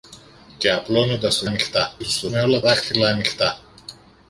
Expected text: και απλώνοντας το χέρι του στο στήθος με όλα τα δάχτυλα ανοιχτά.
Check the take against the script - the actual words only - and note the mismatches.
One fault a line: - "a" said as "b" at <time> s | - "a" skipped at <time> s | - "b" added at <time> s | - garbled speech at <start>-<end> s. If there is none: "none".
- "χέρι" said as "ανοιχτά" at 1.4 s
- "στήθος" skipped at 2.3 s
- "τα" skipped at 2.6 s